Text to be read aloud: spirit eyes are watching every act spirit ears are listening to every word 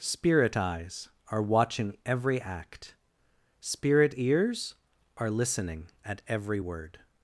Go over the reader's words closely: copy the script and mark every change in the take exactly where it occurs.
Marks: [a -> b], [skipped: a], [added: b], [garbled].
spirit eyes are watching every act spirit ears are listening [to -> at] every word